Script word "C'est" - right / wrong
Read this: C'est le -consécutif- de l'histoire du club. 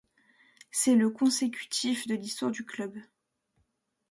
right